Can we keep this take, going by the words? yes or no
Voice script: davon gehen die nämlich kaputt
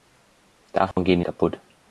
no